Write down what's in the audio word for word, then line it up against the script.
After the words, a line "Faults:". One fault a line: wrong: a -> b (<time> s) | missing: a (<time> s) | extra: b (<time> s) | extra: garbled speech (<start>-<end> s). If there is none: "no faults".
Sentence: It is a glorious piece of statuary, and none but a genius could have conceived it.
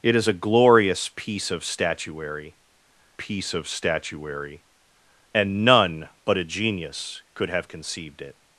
It is a glorious piece of statuary piece of statuary, and none but a genius could have conceived it.
Faults:
extra: piece of statuary (3.2 s)